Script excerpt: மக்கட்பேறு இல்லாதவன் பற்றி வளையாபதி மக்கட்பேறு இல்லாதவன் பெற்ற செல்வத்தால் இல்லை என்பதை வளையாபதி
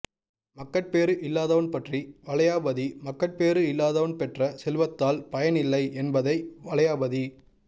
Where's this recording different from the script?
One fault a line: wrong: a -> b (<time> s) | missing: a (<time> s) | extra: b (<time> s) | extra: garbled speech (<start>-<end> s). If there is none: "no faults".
extra: பயன் (5.3 s)